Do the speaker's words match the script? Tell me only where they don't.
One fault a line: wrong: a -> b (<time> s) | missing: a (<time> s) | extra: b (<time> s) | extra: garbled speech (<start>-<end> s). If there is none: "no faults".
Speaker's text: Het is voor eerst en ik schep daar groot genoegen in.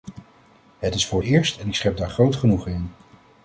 no faults